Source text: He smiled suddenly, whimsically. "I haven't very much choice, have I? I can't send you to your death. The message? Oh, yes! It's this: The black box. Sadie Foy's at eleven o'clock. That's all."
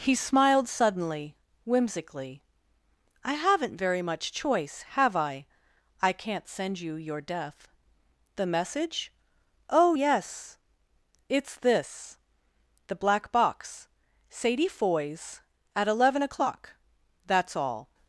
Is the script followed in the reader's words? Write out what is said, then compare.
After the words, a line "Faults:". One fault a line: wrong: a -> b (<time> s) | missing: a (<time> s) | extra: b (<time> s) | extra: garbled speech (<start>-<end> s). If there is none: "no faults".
He smiled suddenly, whimsically. "I haven't very much choice, have I? I can't send you your death. The message? Oh, yes! It's this: The black box. Sadie Foy's at eleven o'clock. That's all."
Faults:
missing: to (7.0 s)